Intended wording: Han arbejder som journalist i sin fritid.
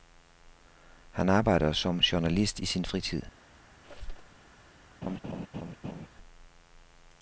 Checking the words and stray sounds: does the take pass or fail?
fail